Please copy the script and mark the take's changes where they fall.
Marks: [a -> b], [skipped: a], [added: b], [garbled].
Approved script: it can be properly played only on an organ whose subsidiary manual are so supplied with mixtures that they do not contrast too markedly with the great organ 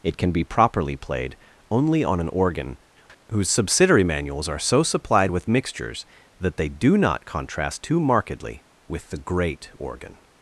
it can be properly played only on an organ whose subsidiary [manual -> manuals] are so supplied with mixtures that they do not contrast too markedly with the great organ